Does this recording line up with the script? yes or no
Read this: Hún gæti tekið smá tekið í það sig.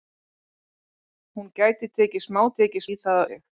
yes